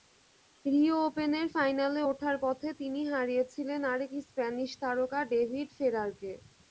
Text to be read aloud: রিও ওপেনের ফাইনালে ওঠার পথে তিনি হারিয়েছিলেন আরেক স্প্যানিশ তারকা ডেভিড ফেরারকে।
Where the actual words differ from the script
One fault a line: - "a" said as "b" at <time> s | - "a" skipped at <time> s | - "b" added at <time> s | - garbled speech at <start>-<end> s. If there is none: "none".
none